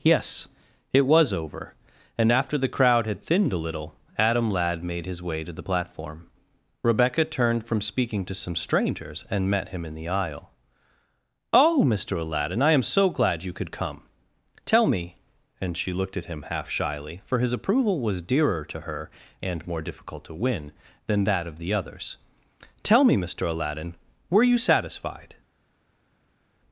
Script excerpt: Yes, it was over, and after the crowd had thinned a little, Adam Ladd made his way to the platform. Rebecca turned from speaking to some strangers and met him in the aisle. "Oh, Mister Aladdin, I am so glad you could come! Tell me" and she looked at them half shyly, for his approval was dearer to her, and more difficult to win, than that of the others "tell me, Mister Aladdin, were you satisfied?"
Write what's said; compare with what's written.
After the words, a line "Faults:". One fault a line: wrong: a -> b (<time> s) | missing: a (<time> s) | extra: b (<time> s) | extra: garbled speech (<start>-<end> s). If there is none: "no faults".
Yes, it was over, and after the crowd had thinned a little, Adam Ladd made his way to the platform. Rebecca turned from speaking to some strangers and met him in the aisle. "Oh, Mister Aladdin, I am so glad you could come! Tell me" and she looked at him half shyly, for his approval was dearer to her, and more difficult to win, than that of the others "tell me, Mister Aladdin, were you satisfied?"
Faults:
wrong: them -> him (16.3 s)